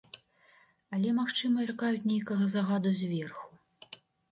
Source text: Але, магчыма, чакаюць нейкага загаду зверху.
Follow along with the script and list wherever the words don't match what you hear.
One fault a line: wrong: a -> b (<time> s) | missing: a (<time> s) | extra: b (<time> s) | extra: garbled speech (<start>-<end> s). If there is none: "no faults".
no faults